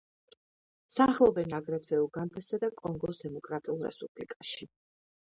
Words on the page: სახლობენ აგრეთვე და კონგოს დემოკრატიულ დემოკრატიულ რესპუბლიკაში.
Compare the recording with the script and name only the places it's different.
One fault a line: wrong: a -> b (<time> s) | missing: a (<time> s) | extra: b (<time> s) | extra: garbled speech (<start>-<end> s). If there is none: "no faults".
extra: უგანდასა (2.0 s)
missing: დემოკრატიულ (3.8 s)